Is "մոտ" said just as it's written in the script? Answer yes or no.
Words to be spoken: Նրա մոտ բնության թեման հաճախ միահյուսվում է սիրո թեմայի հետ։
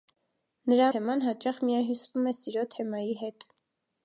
no